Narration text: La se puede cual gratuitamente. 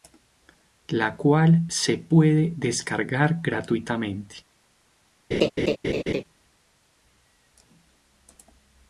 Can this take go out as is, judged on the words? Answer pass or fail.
fail